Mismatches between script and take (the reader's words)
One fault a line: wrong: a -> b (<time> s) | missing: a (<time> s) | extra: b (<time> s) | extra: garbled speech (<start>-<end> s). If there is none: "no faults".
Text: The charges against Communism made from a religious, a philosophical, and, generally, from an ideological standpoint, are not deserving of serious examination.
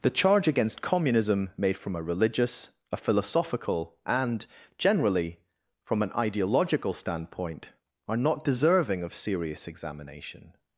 wrong: charges -> charge (0.1 s)